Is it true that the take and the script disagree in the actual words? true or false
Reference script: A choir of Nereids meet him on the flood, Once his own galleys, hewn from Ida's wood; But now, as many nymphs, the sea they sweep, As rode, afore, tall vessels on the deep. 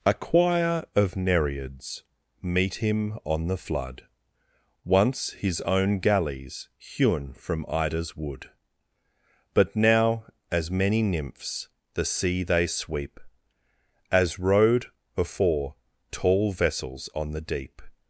false